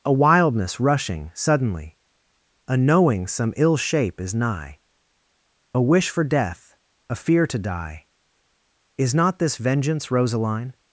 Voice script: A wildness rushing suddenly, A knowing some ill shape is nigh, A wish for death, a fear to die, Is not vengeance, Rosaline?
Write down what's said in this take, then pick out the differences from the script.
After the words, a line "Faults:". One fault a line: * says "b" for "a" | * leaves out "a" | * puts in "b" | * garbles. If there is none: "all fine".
A wildness rushing suddenly, A knowing some ill shape is nigh, A wish for death, a fear to die, Is not this vengeance, Rosaline?
Faults:
* puts in "this"